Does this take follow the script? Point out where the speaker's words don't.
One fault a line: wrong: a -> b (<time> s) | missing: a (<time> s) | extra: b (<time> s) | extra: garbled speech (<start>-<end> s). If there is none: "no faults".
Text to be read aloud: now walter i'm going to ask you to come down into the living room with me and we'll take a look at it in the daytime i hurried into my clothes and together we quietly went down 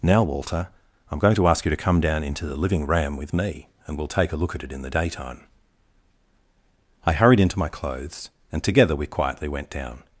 wrong: room -> ram (2.9 s)